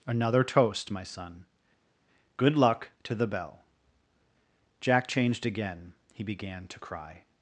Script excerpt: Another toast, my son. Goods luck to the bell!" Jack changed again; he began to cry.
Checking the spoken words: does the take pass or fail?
fail